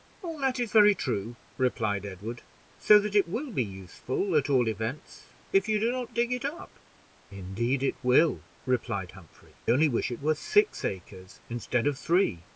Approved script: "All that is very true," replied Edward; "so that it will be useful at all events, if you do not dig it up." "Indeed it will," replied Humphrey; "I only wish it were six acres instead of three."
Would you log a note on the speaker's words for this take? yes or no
yes